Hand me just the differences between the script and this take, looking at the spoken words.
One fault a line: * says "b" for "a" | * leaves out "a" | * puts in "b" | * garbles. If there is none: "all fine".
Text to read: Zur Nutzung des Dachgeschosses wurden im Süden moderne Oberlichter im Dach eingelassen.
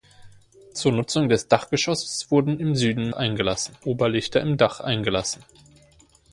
* says "eingelassen" for "moderne"